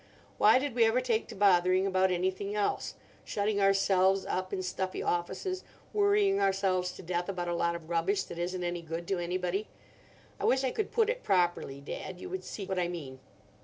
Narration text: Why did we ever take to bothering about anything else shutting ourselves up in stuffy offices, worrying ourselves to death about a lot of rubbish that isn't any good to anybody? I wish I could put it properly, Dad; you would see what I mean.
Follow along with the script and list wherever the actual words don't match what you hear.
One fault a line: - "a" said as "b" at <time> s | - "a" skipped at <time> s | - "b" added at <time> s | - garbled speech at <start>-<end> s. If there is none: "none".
none